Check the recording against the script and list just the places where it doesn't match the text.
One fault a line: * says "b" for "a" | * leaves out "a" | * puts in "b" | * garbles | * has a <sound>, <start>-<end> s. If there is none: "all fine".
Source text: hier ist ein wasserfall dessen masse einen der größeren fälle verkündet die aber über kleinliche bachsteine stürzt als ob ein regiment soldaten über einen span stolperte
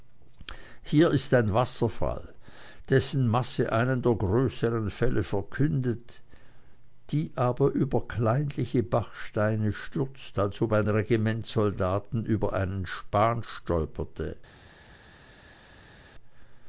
all fine